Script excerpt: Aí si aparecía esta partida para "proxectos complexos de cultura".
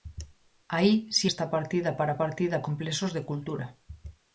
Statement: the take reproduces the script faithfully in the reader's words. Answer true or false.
false